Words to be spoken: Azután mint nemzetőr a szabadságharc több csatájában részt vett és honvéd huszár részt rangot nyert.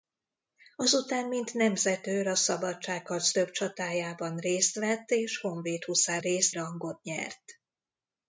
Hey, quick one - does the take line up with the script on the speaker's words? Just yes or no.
yes